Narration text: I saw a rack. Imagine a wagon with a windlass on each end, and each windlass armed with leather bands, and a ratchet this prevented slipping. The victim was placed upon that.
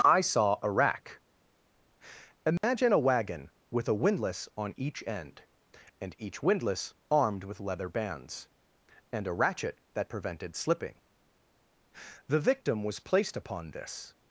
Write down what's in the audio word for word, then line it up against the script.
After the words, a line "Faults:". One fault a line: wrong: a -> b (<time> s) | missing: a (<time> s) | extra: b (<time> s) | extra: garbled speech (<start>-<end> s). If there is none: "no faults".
I saw a rack. Imagine a wagon with a windlass on each end, and each windlass armed with leather bands, and a ratchet that prevented slipping. The victim was placed upon this.
Faults:
wrong: this -> that (9.9 s)
wrong: that -> this (13.7 s)